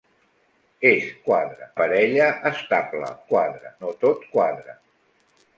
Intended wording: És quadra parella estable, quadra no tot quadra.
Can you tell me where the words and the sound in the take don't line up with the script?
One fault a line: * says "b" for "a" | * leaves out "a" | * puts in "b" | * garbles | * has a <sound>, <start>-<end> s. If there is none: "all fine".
all fine